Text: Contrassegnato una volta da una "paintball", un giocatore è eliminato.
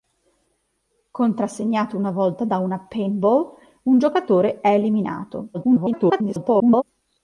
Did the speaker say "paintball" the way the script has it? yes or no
yes